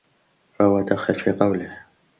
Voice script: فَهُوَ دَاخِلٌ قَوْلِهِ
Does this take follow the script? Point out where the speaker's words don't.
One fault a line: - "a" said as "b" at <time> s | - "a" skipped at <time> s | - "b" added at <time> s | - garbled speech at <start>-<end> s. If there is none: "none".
- "فِي" added at 1.1 s